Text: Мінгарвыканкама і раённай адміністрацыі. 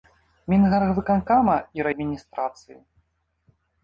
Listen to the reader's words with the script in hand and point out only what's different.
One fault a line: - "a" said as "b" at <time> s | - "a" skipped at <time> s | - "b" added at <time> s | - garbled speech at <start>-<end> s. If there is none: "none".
- "раённай" skipped at 1.9 s